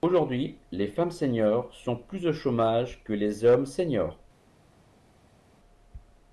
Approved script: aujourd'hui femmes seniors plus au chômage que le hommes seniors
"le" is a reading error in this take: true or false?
true